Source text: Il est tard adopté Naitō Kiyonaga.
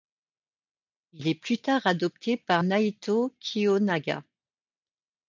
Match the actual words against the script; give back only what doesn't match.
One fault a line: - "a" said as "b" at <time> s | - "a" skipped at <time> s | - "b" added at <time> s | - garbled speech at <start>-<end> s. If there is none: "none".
- "plus" added at 1.4 s
- "par" added at 2.4 s